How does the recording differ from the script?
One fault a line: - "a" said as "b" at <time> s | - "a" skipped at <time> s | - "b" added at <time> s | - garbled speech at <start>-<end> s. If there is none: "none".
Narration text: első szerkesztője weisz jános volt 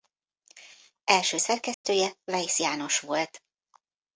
none